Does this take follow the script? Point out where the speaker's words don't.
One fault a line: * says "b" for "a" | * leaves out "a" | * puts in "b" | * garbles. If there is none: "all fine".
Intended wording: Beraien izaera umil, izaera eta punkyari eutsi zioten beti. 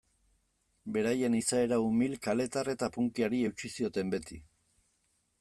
* says "kaletar" for "izaera"